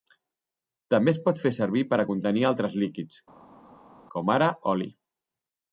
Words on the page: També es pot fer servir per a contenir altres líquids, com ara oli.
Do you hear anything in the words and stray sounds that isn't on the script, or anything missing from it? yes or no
no